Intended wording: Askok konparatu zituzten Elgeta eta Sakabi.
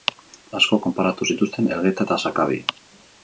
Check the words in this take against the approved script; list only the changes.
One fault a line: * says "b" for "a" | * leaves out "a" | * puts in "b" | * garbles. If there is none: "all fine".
all fine